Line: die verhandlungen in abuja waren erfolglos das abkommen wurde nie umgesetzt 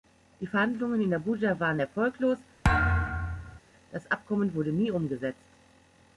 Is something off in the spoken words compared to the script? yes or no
no